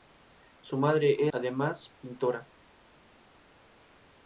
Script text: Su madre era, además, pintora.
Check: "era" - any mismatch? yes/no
yes